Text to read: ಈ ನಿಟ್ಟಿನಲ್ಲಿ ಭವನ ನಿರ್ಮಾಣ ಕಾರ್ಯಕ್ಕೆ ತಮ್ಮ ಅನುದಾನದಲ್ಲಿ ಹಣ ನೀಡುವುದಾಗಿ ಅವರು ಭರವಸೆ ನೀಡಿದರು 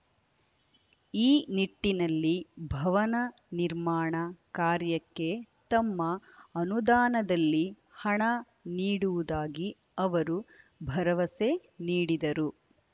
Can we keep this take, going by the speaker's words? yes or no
yes